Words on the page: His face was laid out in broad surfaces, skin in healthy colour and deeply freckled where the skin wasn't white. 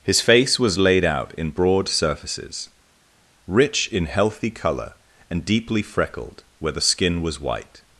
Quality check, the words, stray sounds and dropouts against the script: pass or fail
fail